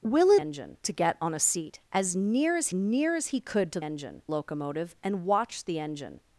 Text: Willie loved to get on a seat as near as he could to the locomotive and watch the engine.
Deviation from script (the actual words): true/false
true